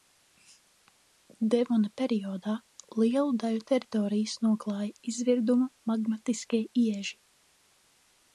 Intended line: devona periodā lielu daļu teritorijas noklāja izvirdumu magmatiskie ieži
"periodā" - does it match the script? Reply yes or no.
yes